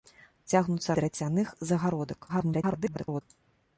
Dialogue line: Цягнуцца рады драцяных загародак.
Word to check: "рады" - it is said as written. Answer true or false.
false